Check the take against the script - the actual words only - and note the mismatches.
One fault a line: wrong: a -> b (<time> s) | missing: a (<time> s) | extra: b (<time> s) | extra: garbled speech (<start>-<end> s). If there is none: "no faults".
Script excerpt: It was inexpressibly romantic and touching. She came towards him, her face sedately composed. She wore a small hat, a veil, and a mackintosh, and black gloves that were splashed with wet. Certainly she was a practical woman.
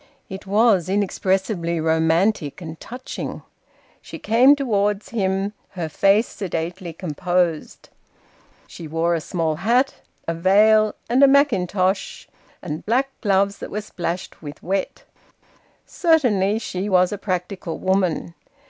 no faults